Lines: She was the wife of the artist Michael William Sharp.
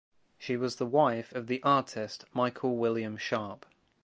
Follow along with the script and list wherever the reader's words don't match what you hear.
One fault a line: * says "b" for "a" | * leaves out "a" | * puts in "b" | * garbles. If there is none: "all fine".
all fine